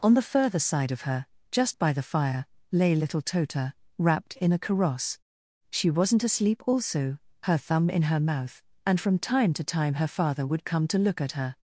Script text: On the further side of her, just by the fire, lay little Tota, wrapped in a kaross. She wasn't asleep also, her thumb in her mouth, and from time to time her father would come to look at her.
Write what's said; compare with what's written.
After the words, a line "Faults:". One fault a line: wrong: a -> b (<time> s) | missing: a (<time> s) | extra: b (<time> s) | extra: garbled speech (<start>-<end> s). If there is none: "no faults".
On the further side of her, just by the fire, lay little Tota, wrapped in a kaross. She wasn't asleep also, her thumb in her mouth, and from time to time her father would come to look at her.
Faults:
no faults